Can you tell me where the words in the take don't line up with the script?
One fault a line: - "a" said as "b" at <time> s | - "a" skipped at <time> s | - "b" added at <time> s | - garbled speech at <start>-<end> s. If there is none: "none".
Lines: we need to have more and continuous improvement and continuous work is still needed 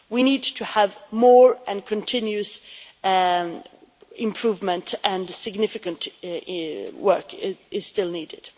- "continuous" said as "significant" at 5.3 s